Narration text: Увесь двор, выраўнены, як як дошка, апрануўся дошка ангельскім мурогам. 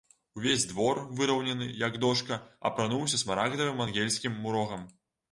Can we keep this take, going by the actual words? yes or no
no